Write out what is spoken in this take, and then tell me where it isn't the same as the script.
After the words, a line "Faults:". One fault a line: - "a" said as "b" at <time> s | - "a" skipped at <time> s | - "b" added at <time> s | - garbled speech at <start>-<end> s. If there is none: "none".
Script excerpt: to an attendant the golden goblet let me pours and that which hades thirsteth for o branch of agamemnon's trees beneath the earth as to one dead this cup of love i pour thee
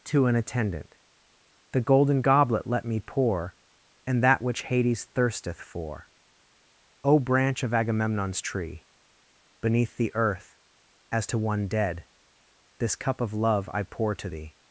to an attendant the golden goblet let me pour and that which hades thirsteth for o branch of agamemnon's tree beneath the earth as to one dead this cup of love i pour to thee
Faults:
- "pours" said as "pour" at 3.0 s
- "trees" said as "tree" at 8.4 s
- "to" added at 14.1 s